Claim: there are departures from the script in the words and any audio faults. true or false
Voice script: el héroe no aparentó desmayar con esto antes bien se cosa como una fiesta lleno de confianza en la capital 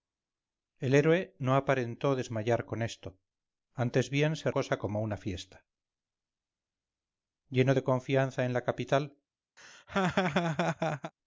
true